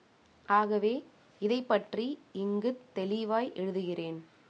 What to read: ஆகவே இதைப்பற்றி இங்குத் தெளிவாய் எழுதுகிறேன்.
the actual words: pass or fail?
pass